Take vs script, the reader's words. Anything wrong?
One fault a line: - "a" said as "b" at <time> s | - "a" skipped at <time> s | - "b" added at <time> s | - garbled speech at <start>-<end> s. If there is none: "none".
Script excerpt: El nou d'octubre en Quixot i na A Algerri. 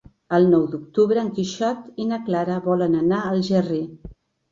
- "Clara volen anar" added at 2.3 s